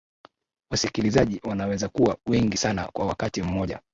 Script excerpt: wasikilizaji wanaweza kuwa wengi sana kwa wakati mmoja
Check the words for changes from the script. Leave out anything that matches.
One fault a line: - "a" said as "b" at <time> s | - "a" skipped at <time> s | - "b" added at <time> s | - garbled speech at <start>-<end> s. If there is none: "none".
none